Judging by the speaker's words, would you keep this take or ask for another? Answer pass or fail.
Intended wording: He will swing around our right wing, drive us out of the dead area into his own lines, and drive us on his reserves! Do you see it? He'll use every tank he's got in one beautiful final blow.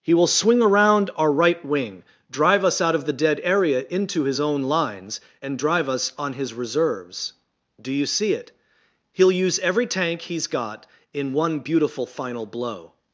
pass